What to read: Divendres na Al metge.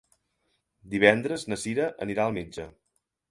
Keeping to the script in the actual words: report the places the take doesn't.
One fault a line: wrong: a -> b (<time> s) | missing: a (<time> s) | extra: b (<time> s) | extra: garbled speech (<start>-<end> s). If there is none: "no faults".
extra: Cira anirà (1.6 s)